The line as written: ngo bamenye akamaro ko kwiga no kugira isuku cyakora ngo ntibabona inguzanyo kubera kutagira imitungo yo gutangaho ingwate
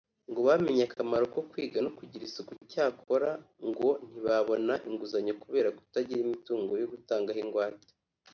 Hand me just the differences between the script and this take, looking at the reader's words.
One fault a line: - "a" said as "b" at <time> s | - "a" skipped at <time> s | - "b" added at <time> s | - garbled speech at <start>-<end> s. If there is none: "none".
none